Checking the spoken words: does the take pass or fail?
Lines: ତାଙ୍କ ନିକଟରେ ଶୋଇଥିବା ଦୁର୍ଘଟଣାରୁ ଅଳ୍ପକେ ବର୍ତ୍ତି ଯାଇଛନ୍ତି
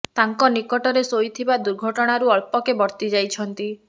pass